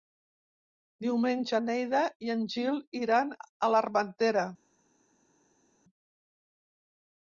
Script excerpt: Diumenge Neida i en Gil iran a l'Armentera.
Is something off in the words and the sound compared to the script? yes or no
no